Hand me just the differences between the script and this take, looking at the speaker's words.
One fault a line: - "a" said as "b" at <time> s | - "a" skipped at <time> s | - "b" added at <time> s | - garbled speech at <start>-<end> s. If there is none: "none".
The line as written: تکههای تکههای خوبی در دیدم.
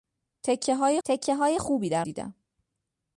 none